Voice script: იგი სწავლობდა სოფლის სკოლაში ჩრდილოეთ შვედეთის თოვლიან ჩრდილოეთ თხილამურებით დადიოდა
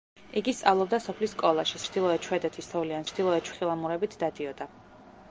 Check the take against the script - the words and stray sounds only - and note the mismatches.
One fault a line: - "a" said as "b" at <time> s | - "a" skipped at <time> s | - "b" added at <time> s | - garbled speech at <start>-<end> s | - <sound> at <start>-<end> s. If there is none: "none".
none